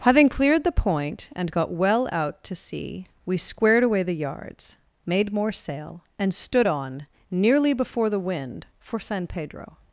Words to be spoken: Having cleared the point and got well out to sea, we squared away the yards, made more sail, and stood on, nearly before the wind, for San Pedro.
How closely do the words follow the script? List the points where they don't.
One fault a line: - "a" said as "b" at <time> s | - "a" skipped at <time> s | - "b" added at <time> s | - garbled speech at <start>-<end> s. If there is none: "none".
none